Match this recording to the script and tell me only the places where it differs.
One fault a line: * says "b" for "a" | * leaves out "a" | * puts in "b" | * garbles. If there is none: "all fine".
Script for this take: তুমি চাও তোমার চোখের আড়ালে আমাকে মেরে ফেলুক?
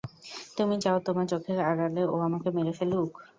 * puts in "ও"